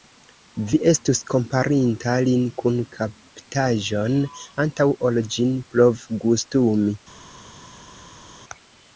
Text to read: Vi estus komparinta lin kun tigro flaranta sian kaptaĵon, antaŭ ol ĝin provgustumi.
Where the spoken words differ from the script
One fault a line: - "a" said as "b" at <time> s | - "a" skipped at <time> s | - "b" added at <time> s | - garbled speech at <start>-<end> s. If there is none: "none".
- "tigro flaranta sian" skipped at 2.8 s